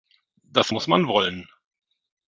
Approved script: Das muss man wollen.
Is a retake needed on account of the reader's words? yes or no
no